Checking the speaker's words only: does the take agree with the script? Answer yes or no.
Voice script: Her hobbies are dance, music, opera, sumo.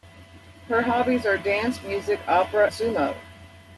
yes